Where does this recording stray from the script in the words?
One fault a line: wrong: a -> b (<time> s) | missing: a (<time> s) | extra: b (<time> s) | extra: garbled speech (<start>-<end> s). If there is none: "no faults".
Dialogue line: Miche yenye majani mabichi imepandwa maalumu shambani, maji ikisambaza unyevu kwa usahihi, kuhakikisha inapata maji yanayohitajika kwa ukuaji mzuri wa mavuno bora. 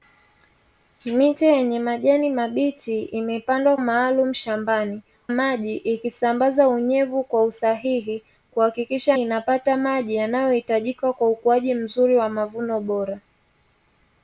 no faults